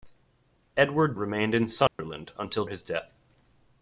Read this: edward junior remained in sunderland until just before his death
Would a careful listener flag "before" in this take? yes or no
yes